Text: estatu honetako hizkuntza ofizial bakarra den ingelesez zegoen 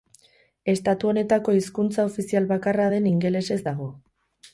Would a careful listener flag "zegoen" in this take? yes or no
yes